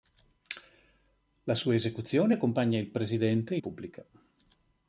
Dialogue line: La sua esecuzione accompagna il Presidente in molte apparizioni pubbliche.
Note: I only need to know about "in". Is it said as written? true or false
false